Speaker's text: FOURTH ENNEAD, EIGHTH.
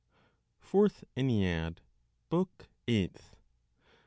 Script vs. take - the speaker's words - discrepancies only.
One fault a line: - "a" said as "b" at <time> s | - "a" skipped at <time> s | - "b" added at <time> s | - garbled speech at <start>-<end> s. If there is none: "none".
- "BOOK" added at 2.3 s